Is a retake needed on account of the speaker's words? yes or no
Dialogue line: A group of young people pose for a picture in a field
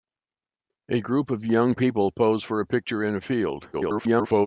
yes